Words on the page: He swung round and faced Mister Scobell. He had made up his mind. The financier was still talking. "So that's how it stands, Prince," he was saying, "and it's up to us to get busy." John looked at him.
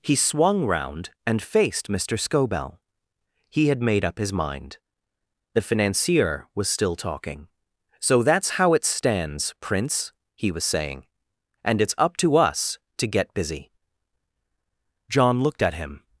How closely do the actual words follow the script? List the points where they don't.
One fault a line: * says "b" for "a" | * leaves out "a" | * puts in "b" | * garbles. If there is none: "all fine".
all fine